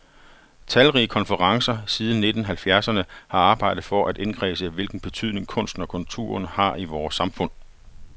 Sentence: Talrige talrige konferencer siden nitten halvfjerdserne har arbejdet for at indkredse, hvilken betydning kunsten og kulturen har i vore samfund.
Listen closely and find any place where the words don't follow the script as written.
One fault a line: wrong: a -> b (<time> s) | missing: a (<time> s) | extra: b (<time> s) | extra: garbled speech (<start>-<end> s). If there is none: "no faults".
missing: talrige (1.1 s)